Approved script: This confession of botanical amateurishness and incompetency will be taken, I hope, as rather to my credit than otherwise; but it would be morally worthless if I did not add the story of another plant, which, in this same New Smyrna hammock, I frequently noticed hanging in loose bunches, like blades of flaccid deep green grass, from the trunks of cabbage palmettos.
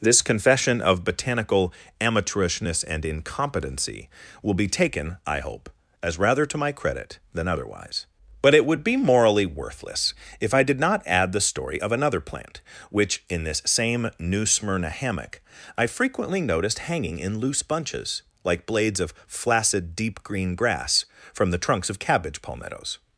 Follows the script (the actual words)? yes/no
yes